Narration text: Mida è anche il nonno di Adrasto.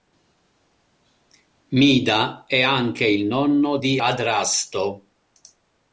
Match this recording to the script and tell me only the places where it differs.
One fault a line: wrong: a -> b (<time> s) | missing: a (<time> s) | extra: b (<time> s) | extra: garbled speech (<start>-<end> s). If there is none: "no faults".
no faults